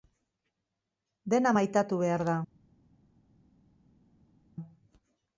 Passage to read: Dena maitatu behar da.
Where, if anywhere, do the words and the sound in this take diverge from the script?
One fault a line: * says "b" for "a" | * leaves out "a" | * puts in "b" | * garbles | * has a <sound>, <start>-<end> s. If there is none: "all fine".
all fine